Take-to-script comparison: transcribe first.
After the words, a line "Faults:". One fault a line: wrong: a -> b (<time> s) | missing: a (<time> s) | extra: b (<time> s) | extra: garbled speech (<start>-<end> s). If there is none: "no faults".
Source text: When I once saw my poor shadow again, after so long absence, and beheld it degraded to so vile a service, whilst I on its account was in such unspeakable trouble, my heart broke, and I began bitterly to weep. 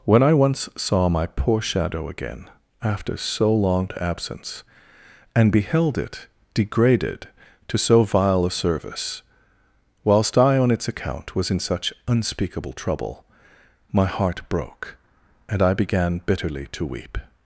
When I once saw my poor shadow again, after so long absence, and beheld it degraded to so vile a service, whilst I on its account was in such unspeakable trouble, my heart broke, and I began bitterly to weep.
Faults:
no faults